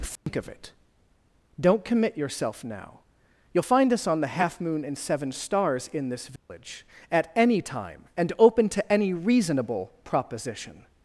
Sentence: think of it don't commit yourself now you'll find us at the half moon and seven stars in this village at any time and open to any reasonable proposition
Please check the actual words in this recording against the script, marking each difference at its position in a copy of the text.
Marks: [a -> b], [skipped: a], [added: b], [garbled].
think of it don't commit yourself now you'll find us [at -> on] the half moon and seven stars in this village at any time and open to any reasonable proposition